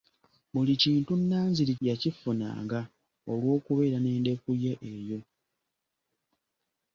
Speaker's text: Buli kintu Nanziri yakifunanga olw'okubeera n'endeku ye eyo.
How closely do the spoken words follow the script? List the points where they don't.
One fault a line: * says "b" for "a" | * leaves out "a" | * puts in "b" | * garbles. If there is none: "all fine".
all fine